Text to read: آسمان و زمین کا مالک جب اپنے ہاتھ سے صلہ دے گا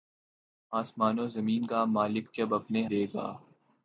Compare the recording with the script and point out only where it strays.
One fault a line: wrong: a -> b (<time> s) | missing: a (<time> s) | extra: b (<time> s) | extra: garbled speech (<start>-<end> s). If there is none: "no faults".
missing: ہاتھ سے صلہ (2.9 s)